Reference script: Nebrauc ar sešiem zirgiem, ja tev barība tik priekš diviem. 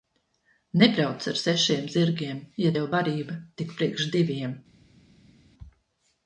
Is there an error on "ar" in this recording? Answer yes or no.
no